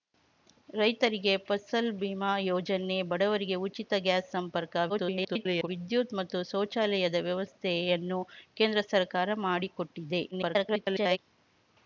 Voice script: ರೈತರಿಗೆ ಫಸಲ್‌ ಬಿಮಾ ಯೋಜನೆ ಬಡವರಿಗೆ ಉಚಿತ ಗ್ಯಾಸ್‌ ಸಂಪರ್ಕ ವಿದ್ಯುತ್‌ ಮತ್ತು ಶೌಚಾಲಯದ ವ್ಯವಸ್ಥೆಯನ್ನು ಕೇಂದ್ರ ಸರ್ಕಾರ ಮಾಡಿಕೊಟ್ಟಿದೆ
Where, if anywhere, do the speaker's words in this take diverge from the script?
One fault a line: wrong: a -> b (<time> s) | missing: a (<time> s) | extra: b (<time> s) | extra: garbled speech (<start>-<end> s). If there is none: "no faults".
extra: garbled speech (4.9-5.7 s)
extra: garbled speech (10.3-11.2 s)